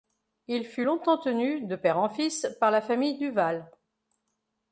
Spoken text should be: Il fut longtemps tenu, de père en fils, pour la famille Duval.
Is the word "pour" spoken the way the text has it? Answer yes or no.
no